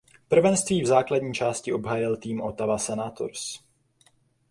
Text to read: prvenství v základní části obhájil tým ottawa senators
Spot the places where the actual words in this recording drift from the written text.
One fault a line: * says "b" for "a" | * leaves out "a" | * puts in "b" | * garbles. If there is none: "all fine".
all fine